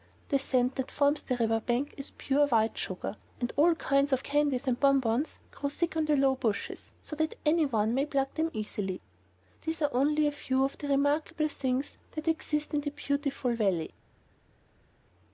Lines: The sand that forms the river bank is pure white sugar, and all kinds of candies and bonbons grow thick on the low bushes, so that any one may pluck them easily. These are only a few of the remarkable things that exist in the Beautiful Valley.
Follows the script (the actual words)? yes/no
yes